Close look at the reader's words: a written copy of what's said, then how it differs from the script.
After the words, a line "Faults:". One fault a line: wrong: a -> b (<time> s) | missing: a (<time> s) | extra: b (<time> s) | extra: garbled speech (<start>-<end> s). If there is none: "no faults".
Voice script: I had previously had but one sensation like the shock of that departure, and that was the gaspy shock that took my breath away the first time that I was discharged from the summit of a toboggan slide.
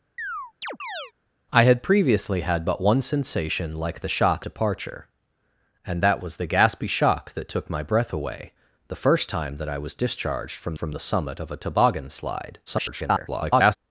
I had previously had but one sensation like the shock departure, and that was the gaspy shock that took my breath away the first time that I was discharged from from the summit of a toboggan slide. [garbled]
Faults:
missing: of that (4.5 s)
extra: from (10.7 s)
extra: garbled speech (12.7-13.8 s)